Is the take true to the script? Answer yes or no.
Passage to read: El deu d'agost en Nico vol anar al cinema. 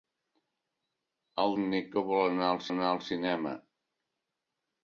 no